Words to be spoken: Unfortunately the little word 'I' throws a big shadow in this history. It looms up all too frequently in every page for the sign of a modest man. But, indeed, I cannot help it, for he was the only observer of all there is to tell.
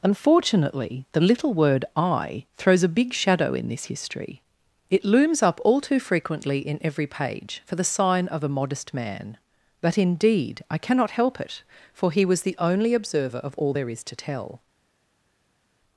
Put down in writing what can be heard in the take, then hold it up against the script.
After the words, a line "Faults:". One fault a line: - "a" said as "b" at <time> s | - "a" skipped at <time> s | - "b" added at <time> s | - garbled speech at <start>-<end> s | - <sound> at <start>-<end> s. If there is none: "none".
Unfortunately the little word 'I' throws a big shadow in this history. It looms up all too frequently in every page for the sign of a modest man. But, indeed, I cannot help it, for he was the only observer of all there is to tell.
Faults:
none